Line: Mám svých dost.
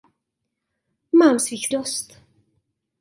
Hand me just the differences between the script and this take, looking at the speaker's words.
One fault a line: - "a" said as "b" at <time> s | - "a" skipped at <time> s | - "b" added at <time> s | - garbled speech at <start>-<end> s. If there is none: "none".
none